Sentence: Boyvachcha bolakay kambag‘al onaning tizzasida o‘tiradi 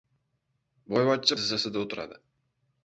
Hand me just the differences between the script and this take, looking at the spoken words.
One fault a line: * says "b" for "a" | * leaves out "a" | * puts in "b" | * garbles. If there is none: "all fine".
* leaves out "bolakay kambag‘al onaning"